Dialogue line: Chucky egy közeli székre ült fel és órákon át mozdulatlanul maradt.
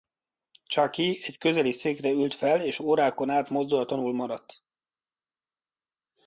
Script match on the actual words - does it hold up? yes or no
yes